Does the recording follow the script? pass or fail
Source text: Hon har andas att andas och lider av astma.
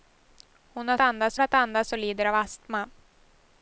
pass